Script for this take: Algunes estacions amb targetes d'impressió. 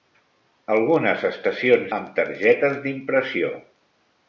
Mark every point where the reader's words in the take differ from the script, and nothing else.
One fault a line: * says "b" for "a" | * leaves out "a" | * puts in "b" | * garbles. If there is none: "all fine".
all fine